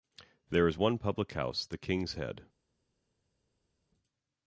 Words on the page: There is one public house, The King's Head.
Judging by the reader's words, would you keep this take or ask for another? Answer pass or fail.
pass